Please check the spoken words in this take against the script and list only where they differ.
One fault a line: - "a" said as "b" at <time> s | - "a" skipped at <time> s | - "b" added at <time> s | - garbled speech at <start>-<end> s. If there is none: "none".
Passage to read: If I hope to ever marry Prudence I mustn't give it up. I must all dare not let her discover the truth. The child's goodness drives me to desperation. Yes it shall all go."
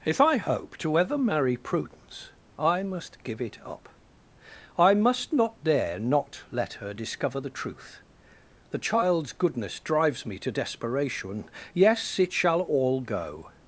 - "mustn't" said as "must" at 2.8 s
- "all" said as "not" at 5.3 s